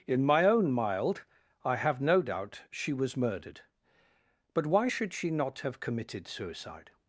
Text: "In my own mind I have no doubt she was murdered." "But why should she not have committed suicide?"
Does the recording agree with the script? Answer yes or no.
no